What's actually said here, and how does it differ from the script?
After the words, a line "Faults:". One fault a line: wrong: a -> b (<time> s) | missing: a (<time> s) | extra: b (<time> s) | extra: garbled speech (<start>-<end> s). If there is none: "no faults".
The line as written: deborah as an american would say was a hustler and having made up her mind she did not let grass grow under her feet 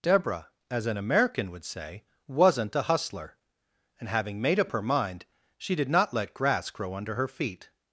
deborah as an american would say wasn't a hustler and having made up her mind she did not let grass grow under her feet
Faults:
wrong: was -> wasn't (2.3 s)